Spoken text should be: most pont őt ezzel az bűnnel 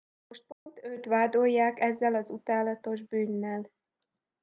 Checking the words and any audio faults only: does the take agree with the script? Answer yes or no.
no